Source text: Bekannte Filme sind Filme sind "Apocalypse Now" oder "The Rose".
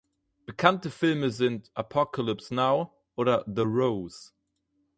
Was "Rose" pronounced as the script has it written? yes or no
yes